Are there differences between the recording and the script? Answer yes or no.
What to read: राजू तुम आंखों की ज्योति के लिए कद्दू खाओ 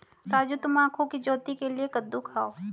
no